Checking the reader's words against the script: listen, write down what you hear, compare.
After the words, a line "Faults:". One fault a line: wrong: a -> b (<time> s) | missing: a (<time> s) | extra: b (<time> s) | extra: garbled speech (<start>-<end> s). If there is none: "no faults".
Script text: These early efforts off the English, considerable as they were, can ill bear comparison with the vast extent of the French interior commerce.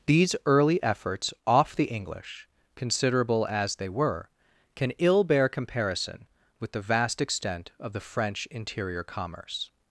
These early efforts off the English, considerable as they were, can ill bear comparison with the vast extent of the French interior commerce.
Faults:
no faults